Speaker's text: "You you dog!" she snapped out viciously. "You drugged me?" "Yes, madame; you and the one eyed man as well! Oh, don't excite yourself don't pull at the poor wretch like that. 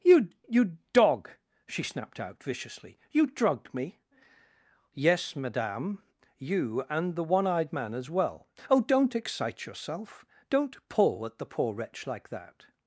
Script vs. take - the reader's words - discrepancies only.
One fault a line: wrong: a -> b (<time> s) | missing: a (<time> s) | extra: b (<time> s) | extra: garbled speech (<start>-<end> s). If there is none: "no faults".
no faults